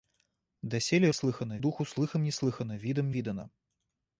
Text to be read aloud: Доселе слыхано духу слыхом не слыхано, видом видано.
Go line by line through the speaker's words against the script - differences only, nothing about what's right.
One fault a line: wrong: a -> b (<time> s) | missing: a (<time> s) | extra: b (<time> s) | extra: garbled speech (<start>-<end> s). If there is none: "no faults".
no faults